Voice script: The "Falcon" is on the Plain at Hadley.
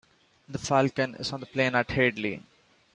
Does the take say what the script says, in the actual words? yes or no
yes